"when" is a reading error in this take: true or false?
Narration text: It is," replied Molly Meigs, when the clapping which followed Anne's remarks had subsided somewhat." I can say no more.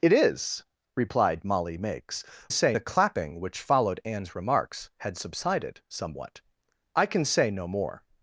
true